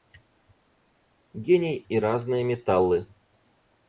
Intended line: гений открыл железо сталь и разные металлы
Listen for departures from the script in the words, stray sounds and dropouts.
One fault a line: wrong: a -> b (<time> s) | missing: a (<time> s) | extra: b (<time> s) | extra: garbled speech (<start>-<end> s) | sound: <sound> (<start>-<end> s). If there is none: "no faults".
missing: открыл железо сталь (1.8 s)